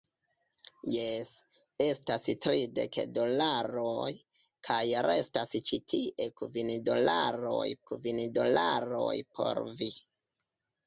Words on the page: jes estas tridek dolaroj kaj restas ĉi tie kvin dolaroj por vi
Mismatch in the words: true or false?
true